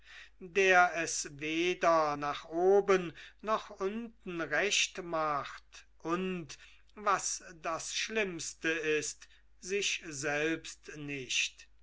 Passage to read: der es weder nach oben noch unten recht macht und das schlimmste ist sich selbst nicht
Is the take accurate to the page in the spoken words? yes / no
no